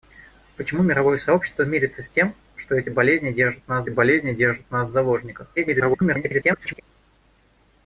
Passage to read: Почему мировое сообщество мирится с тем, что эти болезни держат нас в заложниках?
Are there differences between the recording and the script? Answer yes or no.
yes